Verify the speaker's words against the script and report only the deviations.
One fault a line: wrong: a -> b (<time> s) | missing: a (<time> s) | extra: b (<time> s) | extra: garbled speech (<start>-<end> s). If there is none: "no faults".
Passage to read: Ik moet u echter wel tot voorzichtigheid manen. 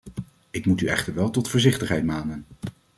no faults